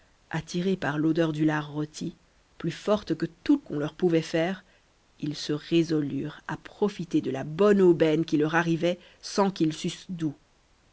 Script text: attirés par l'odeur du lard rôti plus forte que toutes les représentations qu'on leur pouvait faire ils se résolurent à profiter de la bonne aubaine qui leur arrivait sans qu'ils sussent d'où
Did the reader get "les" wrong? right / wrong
wrong